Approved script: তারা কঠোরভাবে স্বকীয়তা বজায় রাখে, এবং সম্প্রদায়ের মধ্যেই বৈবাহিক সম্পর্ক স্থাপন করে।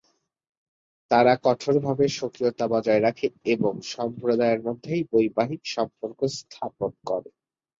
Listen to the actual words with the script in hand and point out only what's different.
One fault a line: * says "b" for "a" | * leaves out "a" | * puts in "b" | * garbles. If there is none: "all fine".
all fine